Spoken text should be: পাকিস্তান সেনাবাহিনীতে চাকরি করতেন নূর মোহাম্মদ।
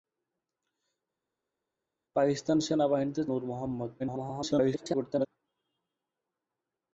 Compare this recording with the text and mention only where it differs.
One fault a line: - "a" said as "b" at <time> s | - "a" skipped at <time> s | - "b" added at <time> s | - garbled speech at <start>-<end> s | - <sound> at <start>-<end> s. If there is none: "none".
- "চাকরি করতেন" skipped at 3.2 s
- garbled speech at 4.0-5.3 s